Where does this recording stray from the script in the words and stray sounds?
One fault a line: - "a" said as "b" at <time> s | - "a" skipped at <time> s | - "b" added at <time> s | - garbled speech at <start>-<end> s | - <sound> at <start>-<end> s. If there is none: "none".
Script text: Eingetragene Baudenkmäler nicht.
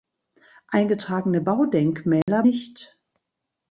- dropout at 2.2-2.3 s